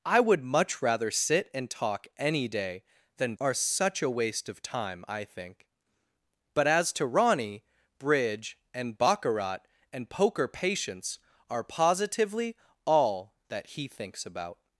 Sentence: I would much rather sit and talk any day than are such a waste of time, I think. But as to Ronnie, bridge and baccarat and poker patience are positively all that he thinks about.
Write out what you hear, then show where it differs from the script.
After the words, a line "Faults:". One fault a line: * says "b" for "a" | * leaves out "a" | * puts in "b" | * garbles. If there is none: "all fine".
I would much rather sit and talk any day than are such a waste of time, I think. But as to Ronnie, bridge and baccarat and poker patience are positively all that he thinks about.
Faults:
all fine